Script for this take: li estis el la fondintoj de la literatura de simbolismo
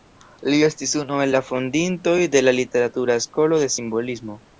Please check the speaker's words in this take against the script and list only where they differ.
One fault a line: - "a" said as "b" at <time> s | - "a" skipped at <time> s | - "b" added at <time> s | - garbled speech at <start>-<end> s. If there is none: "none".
- "unu" added at 1.0 s
- "skolo" added at 3.3 s